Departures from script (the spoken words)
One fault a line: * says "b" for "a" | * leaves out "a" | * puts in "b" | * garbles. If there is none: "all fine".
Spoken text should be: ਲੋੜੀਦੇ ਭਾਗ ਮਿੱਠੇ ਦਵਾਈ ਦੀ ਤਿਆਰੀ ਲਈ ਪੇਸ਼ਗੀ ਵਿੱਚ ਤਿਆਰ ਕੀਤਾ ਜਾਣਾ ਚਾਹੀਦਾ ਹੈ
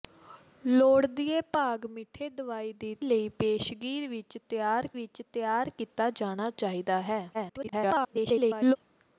* leaves out "ਤਿਆਰੀ"
* puts in "ਵਿੱਚ ਤਿਆਰ"
* garbles